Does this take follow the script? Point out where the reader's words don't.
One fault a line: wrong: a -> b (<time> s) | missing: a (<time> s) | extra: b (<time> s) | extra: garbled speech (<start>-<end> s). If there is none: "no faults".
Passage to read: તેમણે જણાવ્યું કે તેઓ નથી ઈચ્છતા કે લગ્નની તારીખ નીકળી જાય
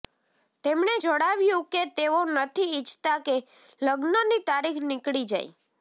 no faults